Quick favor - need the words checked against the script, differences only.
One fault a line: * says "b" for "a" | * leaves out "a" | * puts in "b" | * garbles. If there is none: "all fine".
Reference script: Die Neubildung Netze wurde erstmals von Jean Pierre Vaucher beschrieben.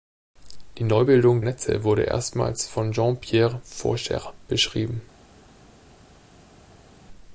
all fine